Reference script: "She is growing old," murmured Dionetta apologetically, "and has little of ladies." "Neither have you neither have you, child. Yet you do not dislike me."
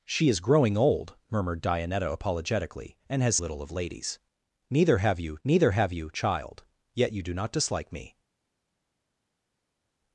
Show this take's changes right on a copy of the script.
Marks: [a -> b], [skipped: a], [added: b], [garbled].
"She is growing old," murmured Dionetta apologetically, "and has little of ladies." "Neither have you neither have you, child. Yet you do not dislike me."